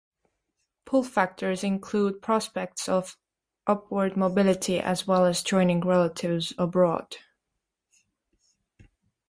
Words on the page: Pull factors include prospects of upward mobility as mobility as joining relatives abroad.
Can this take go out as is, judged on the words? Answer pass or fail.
fail